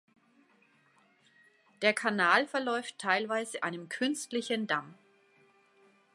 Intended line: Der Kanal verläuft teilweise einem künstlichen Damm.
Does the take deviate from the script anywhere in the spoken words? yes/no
no